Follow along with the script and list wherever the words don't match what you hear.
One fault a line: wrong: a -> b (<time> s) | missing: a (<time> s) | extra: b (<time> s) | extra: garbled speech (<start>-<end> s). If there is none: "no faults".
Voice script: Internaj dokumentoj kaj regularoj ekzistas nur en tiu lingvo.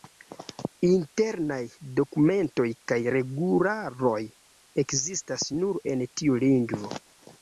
no faults